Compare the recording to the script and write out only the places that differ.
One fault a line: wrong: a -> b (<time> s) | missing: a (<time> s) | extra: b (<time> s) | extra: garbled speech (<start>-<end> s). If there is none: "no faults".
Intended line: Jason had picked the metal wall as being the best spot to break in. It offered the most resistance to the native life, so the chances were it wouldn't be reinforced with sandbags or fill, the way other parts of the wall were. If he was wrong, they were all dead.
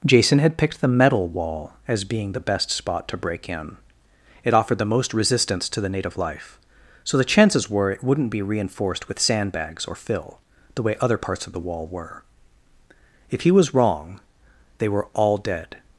no faults